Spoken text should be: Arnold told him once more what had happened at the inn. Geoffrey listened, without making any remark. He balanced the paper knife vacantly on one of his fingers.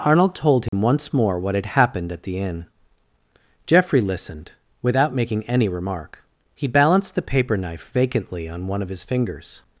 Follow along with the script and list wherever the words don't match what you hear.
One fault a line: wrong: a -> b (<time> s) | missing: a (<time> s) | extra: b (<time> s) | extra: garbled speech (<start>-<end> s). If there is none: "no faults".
no faults